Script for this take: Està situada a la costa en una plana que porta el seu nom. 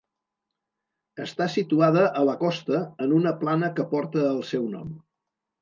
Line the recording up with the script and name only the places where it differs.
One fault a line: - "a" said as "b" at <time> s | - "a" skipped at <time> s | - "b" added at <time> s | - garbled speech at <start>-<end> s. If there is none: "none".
none